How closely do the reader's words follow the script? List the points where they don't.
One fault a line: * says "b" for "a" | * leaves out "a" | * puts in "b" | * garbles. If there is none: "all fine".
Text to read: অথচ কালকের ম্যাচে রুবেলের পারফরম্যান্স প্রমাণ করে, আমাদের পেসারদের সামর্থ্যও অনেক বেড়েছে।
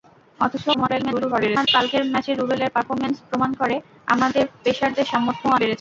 * garbles
* leaves out "অনেক"